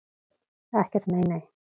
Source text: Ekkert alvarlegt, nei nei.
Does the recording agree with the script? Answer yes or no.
no